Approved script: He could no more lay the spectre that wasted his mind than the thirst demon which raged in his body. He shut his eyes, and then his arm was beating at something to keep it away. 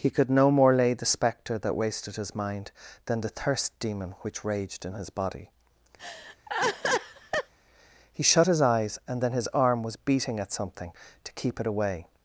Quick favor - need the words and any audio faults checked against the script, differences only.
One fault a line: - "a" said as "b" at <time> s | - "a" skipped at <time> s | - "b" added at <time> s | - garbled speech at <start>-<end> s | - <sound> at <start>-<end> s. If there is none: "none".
- laugh at 6.0-7.5 s